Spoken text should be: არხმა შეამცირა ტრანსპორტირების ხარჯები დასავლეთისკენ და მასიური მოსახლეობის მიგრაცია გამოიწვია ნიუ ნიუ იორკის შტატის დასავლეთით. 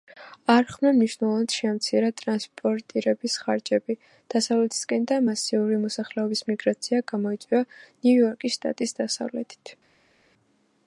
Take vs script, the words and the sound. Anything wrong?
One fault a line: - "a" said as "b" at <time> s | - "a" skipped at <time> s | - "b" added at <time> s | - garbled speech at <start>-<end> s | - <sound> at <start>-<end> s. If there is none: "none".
- "მნიშვნელოვნად" added at 1.0 s
- "ნიუ" skipped at 8.1 s